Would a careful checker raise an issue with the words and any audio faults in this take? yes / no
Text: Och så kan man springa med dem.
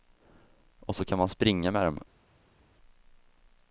no